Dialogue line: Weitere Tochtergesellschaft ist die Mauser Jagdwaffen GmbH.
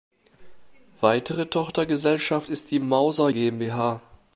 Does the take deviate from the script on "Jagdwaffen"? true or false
true